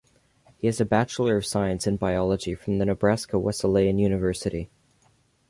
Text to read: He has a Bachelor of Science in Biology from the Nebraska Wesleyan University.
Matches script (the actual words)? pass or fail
pass